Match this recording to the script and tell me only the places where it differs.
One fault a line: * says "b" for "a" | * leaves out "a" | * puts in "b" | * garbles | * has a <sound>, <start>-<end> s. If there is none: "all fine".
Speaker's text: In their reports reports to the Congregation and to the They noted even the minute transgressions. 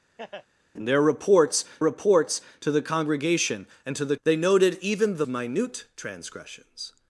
* has a laugh, 0.2-0.5 s